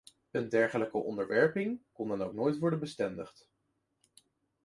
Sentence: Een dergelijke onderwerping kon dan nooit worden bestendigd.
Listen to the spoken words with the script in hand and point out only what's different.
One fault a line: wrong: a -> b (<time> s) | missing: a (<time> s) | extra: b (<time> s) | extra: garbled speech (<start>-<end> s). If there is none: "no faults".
extra: ook (2.2 s)